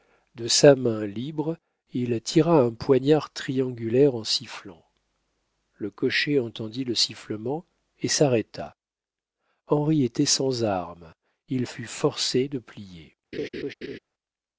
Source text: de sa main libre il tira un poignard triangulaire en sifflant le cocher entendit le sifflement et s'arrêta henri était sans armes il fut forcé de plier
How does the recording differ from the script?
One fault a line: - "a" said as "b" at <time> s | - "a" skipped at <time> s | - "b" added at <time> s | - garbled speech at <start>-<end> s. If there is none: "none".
none